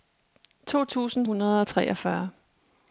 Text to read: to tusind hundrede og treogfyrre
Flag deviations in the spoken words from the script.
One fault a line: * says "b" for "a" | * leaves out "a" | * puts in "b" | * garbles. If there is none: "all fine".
all fine